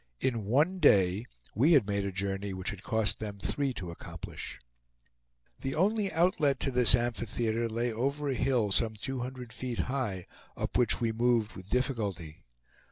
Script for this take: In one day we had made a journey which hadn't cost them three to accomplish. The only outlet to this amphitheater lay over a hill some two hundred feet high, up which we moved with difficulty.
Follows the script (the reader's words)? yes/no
no